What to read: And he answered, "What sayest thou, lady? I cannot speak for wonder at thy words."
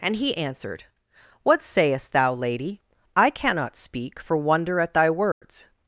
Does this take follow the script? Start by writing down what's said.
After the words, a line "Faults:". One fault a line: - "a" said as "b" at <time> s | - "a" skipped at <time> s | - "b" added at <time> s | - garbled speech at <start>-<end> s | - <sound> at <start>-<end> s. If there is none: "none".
And he answered, "What sayest thou, lady? I cannot speak for wonder at thy words."
Faults:
- dropout at 5.3-5.4 s